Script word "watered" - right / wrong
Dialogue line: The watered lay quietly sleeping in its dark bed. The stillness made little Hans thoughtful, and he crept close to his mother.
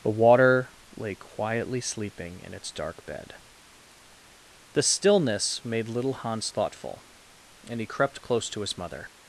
wrong